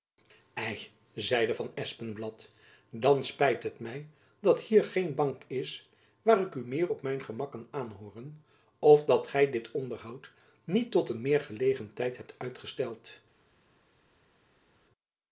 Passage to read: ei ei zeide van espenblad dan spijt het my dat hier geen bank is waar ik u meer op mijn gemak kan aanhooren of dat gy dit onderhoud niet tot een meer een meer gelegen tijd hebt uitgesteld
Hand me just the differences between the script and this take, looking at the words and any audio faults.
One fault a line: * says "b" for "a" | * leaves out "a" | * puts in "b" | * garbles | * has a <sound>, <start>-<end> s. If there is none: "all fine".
* leaves out "ei"
* leaves out "een meer"